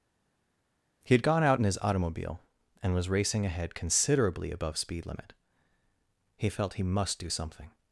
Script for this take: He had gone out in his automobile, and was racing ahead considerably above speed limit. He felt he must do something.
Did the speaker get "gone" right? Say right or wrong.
right